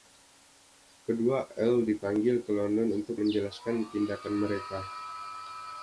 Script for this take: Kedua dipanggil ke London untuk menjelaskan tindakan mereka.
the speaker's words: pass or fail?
fail